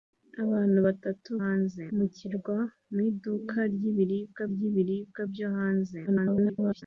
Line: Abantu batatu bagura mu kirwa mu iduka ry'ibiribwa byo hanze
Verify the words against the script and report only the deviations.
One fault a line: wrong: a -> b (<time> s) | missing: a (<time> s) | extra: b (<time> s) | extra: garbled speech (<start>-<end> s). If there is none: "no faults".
wrong: bagura -> hanze (1.4 s)
extra: ry'ibiribwa (4.5 s)
extra: garbled speech (6.1-6.8 s)